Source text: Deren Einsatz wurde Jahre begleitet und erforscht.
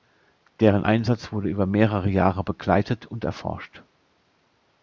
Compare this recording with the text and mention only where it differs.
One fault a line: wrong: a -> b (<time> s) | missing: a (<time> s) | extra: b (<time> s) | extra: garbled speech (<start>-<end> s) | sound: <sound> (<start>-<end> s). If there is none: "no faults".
extra: über mehrere (1.5 s)